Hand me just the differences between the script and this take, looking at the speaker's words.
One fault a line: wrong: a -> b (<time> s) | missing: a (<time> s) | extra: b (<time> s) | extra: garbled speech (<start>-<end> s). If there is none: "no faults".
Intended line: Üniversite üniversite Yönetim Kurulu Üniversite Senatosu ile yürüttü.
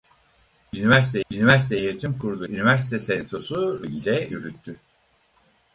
no faults